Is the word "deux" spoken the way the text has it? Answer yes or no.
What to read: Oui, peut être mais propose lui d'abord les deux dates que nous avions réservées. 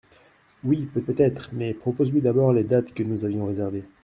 no